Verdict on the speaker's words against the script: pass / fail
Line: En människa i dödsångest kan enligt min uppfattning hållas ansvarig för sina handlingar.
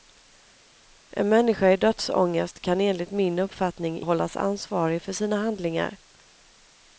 pass